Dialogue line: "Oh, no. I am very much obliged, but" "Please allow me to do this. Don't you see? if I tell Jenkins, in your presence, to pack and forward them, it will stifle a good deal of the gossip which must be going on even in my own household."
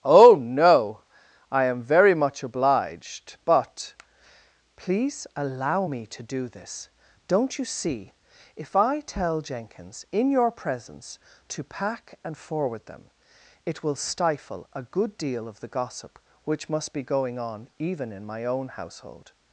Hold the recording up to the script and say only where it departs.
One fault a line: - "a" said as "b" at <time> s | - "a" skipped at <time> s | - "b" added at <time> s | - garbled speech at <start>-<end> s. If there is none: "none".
none